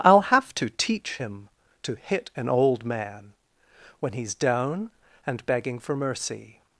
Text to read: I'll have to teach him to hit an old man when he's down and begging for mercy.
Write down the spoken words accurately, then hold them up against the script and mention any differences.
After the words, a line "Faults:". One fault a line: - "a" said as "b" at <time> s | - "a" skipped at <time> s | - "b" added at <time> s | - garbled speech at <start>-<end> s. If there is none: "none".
I'll have to teach him to hit an old man when he's down and begging for mercy.
Faults:
none